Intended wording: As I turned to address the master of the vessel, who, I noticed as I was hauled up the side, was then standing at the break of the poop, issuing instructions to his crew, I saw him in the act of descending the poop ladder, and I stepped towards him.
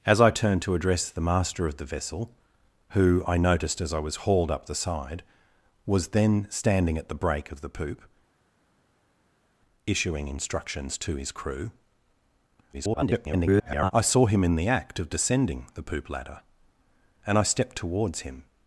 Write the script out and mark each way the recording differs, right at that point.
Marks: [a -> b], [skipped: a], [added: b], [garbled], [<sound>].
As I turned to address the master of the vessel, who, I noticed as I was hauled up the side, was then standing at the break of the poop, issuing instructions to his crew, [garbled] I saw him in the act of descending the poop ladder, and I stepped towards him.